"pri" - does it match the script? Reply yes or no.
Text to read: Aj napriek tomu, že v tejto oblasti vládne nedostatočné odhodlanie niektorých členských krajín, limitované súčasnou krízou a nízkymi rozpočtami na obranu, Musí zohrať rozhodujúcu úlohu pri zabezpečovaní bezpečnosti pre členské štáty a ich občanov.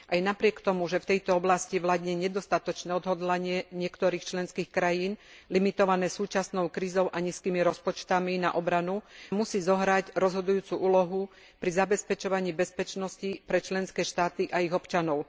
yes